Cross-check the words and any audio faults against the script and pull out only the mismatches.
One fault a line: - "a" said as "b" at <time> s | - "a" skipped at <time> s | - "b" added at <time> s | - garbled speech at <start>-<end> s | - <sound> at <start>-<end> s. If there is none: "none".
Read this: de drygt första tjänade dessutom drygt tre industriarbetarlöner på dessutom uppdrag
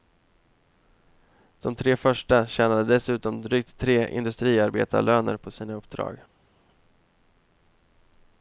- "drygt" said as "tre" at 1.8 s
- "dessutom" said as "sina" at 5.5 s